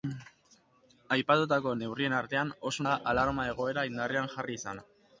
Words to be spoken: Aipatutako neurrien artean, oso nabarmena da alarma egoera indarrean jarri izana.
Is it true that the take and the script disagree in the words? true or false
true